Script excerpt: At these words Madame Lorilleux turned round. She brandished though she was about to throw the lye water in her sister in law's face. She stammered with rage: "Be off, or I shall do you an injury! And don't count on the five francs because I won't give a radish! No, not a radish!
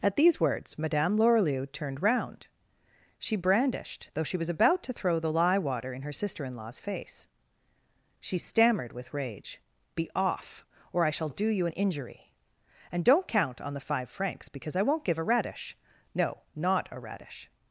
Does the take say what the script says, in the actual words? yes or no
yes